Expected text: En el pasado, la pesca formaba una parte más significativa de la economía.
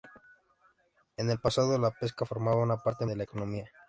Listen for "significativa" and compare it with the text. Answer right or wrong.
wrong